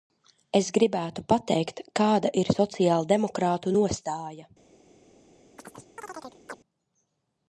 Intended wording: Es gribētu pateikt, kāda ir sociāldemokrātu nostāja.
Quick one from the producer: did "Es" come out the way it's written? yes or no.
yes